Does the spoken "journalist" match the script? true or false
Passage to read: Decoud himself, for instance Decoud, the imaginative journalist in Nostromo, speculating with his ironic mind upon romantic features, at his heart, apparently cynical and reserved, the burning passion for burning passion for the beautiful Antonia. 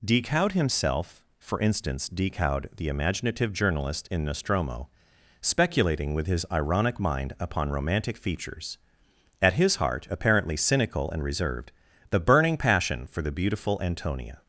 true